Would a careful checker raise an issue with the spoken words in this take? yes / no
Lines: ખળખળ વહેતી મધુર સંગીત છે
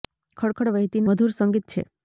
no